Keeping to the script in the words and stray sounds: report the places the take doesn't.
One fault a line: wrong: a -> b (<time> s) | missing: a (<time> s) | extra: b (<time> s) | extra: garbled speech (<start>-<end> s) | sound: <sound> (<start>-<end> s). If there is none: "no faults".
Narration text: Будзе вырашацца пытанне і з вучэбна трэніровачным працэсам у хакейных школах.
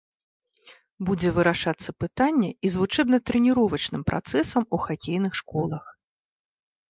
no faults